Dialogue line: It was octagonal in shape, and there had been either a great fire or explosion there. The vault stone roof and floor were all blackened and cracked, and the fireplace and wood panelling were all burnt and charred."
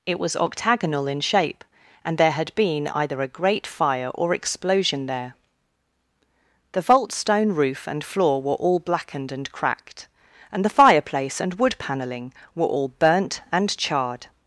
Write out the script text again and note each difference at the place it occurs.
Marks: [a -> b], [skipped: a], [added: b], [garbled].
It was octagonal in shape, and there had been either a great fire or explosion there. The vault stone roof and floor were all blackened and cracked, and the fireplace and wood panelling were all burnt and charred."